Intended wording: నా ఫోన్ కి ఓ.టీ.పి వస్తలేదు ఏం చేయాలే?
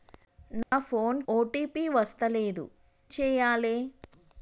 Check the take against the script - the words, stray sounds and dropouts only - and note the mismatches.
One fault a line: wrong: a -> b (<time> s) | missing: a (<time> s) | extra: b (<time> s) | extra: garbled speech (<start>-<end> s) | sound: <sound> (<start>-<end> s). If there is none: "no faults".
sound: dropout (0.6-0.7 s)
missing: కి (1.2 s)
missing: ఏం (2.6 s)